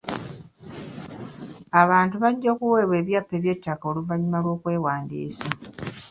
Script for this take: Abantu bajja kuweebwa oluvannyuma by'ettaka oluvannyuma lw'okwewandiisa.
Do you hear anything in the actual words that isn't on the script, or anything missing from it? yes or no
yes